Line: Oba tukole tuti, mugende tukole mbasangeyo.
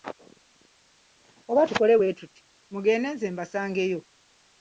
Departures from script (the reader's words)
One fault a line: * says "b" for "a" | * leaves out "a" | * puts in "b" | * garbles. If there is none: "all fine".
* puts in "bwe"
* says "nze" for "tukole"